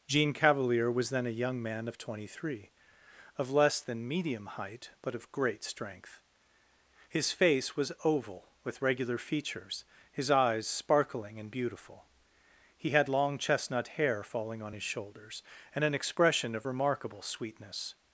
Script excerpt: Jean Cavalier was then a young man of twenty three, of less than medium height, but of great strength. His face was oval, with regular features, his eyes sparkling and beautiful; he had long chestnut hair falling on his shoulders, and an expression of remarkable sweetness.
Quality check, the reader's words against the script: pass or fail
pass